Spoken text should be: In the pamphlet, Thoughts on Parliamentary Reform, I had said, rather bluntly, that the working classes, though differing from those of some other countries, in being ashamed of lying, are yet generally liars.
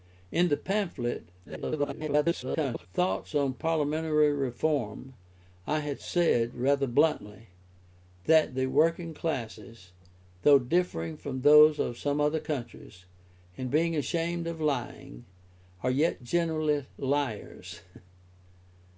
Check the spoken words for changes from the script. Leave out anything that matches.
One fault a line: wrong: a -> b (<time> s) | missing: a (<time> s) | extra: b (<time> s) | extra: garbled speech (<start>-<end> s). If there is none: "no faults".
extra: garbled speech (1.4-2.9 s)